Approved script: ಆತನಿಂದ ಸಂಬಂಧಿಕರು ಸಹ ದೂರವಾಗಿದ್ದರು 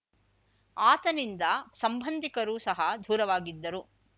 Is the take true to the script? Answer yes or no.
yes